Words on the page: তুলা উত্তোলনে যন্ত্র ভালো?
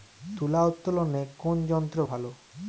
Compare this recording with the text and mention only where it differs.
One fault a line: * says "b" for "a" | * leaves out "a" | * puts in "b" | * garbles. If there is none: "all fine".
* puts in "কোন"